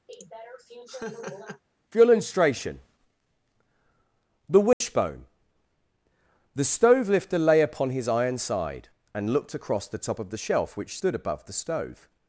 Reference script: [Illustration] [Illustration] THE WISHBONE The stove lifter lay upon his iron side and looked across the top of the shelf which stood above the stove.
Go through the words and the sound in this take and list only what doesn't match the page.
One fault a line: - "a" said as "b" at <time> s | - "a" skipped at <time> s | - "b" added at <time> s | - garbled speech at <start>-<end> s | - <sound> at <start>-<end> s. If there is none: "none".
- laugh at 0.1-1.6 s
- "Illustration" said as "For" at 1.9 s
- dropout at 4.7-4.8 s